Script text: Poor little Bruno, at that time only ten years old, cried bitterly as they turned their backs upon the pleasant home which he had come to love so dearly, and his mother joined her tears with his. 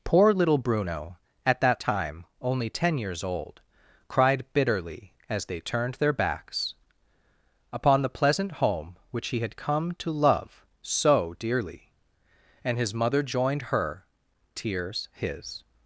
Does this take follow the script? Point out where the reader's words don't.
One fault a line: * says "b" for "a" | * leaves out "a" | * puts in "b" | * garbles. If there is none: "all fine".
* leaves out "with"